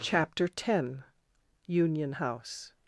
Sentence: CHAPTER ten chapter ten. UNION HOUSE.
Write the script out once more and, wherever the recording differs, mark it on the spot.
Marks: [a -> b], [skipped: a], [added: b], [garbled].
CHAPTER ten [skipped: chapter ten.] UNION HOUSE.